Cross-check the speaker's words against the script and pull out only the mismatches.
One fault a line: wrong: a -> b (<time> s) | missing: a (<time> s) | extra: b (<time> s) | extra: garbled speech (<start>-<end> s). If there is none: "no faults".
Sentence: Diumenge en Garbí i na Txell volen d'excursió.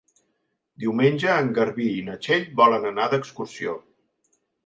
extra: anar (2.9 s)